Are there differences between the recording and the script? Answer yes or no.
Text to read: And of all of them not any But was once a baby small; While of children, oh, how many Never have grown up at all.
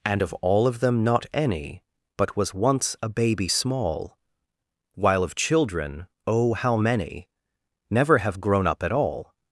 no